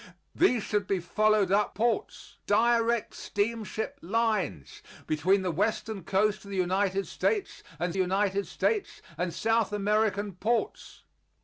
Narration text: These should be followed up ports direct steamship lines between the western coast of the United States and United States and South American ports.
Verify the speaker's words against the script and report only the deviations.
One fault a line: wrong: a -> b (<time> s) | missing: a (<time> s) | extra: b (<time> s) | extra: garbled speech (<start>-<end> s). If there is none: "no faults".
no faults